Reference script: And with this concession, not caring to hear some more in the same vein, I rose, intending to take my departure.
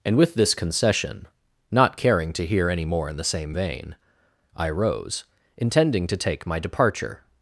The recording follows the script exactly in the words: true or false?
false